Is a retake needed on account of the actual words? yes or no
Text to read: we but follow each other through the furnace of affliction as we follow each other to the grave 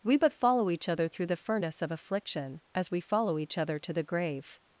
no